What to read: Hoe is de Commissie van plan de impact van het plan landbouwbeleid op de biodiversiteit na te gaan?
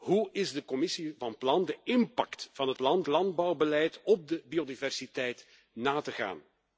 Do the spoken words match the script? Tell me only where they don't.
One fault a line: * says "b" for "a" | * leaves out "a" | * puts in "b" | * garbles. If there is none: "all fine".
all fine